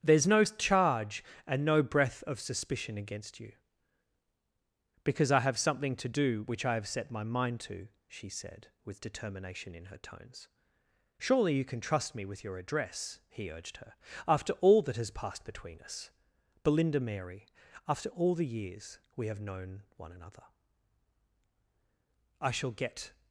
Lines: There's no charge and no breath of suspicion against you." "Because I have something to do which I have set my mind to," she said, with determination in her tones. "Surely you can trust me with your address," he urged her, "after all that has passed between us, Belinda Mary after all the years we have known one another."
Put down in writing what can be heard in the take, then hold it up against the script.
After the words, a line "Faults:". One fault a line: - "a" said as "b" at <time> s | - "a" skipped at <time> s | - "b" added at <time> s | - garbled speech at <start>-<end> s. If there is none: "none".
There's no charge and no breath of suspicion against you." "Because I have something to do which I have set my mind to," she said, with determination in her tones. "Surely you can trust me with your address," he urged her, "after all that has passed between us, Belinda Mary after all the years we have known one another." "I shall get
Faults:
- "I shall get" added at 22.4 s